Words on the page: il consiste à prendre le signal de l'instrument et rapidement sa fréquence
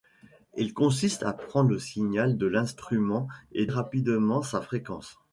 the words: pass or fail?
pass